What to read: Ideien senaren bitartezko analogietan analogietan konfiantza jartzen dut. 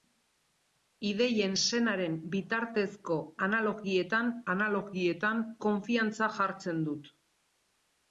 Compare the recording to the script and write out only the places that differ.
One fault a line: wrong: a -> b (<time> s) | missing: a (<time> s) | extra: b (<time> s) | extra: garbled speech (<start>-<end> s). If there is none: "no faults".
no faults